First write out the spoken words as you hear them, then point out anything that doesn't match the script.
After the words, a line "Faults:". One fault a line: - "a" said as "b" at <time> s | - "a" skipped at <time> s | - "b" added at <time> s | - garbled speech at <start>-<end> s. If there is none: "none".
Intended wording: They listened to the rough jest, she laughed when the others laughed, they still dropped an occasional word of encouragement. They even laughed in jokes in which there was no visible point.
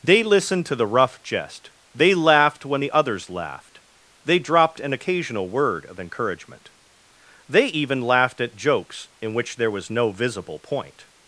They listened to the rough jest, they laughed when the others laughed, they dropped an occasional word of encouragement. They even laughed at jokes in which there was no visible point.
Faults:
- "she" said as "they" at 1.9 s
- "still" skipped at 4.4 s
- "in" said as "at" at 8.4 s